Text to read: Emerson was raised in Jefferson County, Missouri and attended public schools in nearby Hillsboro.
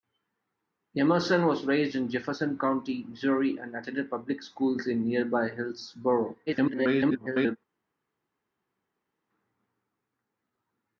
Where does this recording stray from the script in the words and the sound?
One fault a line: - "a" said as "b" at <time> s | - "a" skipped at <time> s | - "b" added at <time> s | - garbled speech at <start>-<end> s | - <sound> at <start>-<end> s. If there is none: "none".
- garbled speech at 6.5-7.6 s